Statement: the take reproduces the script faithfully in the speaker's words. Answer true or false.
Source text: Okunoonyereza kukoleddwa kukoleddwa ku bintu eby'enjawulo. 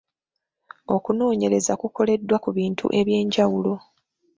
false